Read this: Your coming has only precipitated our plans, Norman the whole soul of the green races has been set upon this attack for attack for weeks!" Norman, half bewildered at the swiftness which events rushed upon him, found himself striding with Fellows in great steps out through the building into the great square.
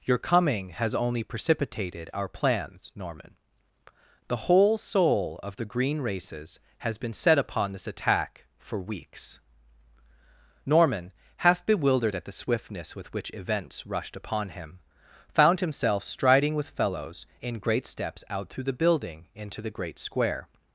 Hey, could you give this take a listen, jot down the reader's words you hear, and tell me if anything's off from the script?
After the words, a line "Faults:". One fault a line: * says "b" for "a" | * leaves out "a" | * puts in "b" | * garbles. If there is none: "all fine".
Your coming has only precipitated our plans, Norman the whole soul of the green races has been set upon this attack for weeks!" Norman, half bewildered at the swiftness with which events rushed upon him, found himself striding with Fellows in great steps out through the building into the great square.
Faults:
* leaves out "attack for"
* puts in "with"